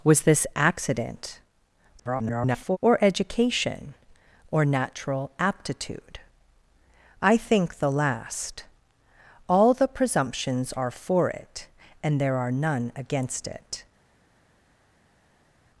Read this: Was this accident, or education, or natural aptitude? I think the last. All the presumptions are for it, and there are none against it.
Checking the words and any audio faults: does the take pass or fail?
fail